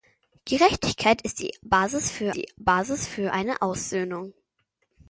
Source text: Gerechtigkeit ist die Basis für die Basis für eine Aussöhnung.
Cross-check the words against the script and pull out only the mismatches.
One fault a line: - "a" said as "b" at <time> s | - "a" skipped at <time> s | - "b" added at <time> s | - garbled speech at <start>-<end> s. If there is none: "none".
none